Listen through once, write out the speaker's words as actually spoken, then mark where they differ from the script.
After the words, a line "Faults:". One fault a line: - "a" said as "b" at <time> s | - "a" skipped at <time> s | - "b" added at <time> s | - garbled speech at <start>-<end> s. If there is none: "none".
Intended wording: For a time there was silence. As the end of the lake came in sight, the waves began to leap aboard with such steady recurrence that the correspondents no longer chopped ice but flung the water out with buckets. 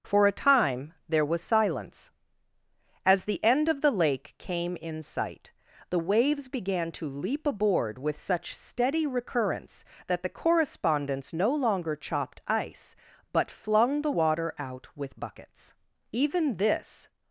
For a time there was silence. As the end of the lake came in sight, the waves began to leap aboard with such steady recurrence that the correspondents no longer chopped ice but flung the water out with buckets. Even this
Faults:
- "Even this" added at 16.1 s